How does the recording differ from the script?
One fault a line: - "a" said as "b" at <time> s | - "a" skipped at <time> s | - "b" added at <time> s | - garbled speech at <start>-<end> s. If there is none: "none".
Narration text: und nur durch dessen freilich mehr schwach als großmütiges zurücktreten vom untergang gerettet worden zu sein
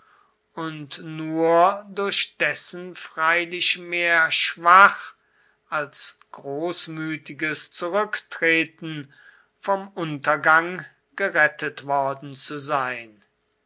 none